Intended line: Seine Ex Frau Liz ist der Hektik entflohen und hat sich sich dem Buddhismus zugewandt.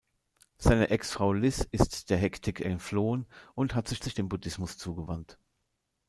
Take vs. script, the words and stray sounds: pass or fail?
pass